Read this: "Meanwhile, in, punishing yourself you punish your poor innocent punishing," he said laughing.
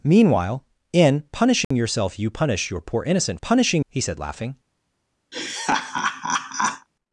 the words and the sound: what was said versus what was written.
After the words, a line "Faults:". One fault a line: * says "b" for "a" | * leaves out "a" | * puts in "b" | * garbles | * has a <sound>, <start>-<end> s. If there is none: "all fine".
"Meanwhile, in, punishing yourself you punish your poor innocent punishing," he said laughing.
Faults:
* has a dropout, 1.6-1.7 s
* has a laugh, 5.3-6.9 s